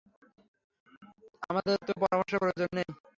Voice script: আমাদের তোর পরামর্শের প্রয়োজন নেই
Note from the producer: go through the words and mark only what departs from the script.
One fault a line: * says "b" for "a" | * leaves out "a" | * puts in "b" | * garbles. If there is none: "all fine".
all fine